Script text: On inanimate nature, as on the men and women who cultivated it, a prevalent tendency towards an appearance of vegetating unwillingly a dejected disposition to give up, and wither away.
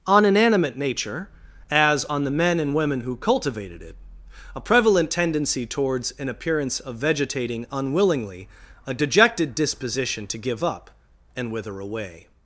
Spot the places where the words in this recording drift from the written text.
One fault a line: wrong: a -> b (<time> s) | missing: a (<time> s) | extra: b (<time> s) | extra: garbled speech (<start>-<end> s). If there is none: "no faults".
no faults